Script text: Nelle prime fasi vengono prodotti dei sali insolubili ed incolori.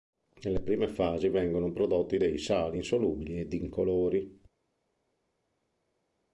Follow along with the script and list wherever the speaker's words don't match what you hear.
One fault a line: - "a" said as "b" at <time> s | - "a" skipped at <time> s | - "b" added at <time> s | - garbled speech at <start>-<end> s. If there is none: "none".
none